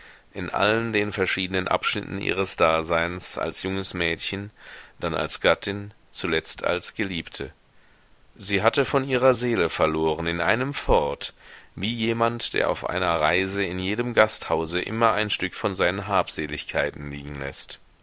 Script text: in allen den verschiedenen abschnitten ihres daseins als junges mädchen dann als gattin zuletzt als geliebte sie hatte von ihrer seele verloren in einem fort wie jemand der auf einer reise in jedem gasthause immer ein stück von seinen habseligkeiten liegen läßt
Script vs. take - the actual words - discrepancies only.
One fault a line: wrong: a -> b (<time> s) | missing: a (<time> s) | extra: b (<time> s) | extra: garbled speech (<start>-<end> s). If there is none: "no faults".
no faults